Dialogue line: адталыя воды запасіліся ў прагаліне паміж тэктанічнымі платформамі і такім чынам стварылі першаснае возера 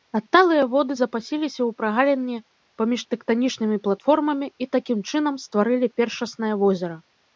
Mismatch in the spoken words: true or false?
false